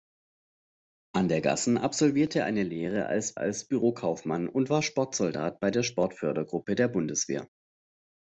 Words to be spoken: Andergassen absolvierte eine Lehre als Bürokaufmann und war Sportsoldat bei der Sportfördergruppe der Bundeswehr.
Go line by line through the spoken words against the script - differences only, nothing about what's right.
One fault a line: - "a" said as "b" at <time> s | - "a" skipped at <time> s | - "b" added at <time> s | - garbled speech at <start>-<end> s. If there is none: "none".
- "als" added at 3.4 s